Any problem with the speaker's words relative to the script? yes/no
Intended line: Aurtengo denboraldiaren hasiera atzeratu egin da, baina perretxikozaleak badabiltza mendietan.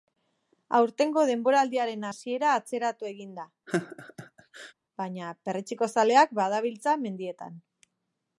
no